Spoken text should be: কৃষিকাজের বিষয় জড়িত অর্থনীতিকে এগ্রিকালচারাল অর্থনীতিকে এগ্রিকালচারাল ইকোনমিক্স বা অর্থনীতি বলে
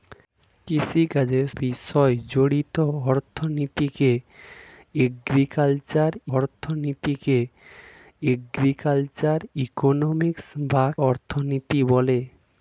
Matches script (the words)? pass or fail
pass